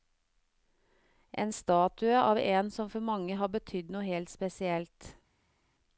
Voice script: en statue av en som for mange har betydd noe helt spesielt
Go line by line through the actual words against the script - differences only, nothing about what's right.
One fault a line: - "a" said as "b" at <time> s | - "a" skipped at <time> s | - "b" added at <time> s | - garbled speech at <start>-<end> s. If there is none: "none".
none